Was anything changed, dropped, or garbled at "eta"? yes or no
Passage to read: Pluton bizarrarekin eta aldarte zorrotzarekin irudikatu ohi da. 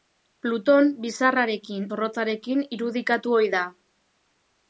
yes